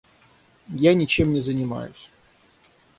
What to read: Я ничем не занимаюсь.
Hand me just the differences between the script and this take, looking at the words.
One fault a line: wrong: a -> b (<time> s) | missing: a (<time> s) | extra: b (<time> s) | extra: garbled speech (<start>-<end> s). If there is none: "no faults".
no faults